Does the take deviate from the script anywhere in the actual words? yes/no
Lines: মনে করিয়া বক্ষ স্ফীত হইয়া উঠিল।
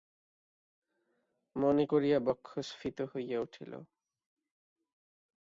no